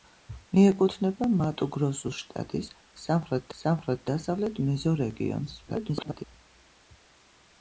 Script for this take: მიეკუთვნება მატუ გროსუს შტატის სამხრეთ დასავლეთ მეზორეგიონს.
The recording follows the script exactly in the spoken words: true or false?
false